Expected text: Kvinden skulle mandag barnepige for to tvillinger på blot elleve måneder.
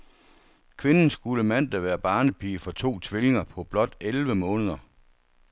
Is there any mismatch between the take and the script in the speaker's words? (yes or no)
yes